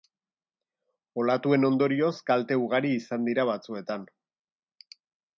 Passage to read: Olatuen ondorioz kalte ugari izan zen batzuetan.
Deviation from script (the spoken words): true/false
true